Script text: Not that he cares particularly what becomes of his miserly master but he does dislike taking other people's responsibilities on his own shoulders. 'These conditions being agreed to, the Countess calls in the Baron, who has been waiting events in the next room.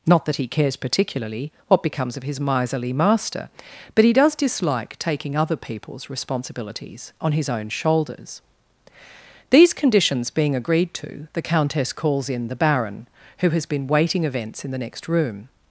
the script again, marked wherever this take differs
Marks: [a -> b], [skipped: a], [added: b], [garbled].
Not that he cares particularly what becomes of his miserly master but he does dislike taking other people's responsibilities on his own shoulders. 'These conditions being agreed to, the Countess calls in the Baron, who has been waiting events in the next room.